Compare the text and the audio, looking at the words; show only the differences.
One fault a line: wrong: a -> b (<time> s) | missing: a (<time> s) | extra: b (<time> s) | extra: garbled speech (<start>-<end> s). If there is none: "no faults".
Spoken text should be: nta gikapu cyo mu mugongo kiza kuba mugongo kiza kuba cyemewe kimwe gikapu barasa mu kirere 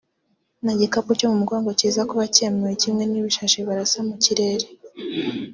missing: mugongo kiza kuba (2.2 s)
wrong: gikapu -> n'ibishashi (3.1 s)